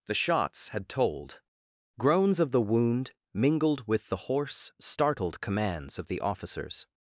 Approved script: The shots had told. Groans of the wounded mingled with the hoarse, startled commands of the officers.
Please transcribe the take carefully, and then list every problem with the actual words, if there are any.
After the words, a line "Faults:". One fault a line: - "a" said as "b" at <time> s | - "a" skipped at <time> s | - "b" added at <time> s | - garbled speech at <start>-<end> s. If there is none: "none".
The shots had told. Groans of the wound mingled with the hoarse, startled commands of the officers.
Faults:
- "wounded" said as "wound" at 2.6 s